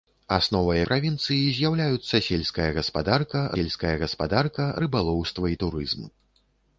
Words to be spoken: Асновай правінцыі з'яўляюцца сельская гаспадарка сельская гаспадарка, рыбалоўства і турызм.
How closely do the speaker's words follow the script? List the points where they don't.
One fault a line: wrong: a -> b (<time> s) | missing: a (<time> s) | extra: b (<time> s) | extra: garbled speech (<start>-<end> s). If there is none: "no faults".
no faults